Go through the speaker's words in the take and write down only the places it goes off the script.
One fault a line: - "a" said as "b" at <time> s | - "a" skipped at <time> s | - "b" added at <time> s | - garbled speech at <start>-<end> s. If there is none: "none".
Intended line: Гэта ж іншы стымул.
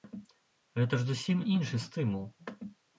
- "зусім" added at 1.1 s